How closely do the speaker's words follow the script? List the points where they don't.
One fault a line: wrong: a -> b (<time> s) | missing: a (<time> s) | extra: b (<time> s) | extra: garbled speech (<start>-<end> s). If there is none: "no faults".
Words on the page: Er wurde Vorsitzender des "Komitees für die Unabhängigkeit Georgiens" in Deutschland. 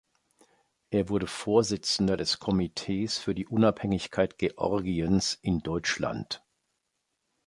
no faults